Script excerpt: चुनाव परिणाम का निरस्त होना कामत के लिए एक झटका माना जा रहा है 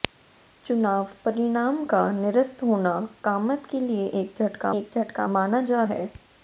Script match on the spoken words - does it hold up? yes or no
no